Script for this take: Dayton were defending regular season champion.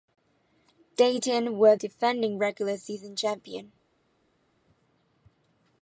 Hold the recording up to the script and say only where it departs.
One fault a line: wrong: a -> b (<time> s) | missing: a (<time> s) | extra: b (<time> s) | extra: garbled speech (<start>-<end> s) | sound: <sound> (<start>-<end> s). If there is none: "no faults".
no faults